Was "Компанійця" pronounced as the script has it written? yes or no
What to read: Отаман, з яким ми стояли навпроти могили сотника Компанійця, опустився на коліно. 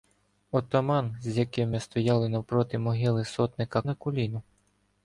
no